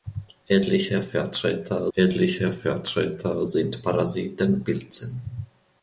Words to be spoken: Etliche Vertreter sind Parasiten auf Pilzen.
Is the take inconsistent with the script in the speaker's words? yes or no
yes